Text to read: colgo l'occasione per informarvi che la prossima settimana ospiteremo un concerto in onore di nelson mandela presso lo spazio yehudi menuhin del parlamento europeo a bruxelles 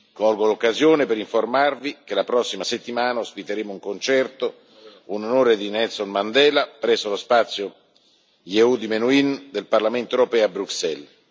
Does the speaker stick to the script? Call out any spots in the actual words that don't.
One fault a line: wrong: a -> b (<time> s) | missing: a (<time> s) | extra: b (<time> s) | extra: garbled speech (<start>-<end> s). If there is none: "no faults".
no faults